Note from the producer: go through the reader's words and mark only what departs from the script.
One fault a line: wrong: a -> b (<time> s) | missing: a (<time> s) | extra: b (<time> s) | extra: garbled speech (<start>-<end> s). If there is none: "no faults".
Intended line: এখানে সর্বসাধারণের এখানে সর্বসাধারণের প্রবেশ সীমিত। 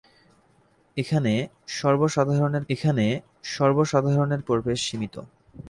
no faults